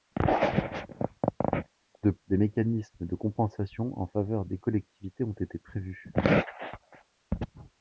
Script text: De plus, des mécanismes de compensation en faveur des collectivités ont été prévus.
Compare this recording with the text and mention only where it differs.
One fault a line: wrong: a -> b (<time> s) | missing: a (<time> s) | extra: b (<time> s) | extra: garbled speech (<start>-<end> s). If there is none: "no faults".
missing: plus (2.1 s)